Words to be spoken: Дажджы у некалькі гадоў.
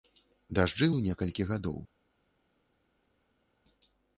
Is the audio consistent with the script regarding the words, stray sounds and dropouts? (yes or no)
yes